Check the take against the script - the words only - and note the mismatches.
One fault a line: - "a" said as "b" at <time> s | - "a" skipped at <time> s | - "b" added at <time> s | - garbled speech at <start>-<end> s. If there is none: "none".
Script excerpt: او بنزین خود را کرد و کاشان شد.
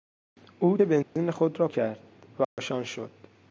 none